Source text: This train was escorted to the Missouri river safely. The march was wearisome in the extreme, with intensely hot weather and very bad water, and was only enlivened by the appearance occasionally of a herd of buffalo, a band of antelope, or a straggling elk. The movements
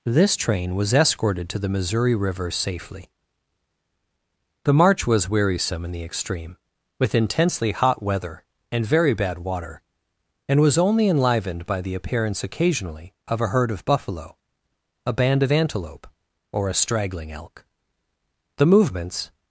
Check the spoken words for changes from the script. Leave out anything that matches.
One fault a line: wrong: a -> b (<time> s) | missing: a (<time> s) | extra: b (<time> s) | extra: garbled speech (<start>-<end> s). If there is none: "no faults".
no faults